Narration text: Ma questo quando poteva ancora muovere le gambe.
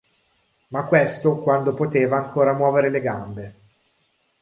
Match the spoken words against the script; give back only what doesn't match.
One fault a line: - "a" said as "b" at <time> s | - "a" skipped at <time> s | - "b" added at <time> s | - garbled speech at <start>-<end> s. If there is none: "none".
none